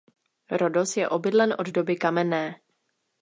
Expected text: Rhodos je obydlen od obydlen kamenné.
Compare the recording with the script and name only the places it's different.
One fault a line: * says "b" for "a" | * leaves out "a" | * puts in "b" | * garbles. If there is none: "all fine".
* says "doby" for "obydlen"